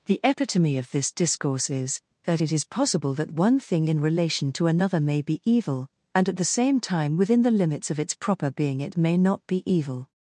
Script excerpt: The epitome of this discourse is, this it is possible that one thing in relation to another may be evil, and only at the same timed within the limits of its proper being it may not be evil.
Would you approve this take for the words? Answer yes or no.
no